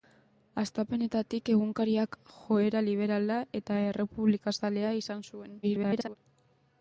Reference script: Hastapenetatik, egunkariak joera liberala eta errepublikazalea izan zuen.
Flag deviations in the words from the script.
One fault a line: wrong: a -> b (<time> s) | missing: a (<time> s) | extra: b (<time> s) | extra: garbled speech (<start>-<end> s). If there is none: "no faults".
extra: garbled speech (5.6-6.2 s)